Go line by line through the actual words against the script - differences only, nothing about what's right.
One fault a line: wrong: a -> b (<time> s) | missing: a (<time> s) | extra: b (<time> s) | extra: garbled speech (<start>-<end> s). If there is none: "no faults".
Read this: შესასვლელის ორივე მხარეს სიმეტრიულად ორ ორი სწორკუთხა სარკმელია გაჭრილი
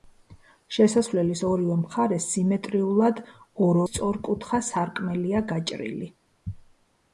missing: ორი (3.8 s)